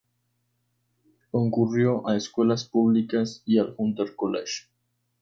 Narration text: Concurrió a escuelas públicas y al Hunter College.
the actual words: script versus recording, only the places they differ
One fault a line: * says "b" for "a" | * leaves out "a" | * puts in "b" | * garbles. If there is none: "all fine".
all fine